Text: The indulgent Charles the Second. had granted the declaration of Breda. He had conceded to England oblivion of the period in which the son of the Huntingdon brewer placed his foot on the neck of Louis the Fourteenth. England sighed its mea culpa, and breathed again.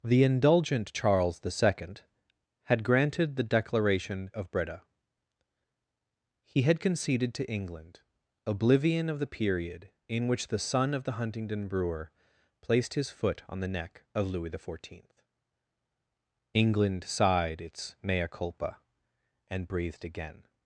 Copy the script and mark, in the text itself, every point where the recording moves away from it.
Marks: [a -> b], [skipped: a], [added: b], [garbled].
The indulgent Charles the Second. had granted the declaration of Breda. He had conceded to England oblivion of the period in which the son of the Huntingdon brewer placed his foot on the neck of Louis the Fourteenth. England sighed its mea culpa, and breathed again.